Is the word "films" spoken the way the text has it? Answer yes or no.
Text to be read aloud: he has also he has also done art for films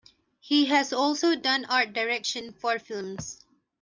yes